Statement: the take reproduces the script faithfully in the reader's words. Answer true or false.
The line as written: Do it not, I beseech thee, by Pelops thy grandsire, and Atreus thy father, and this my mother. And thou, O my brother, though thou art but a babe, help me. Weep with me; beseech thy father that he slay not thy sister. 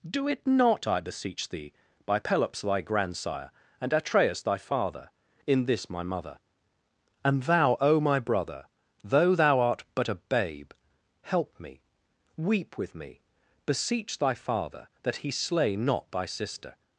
false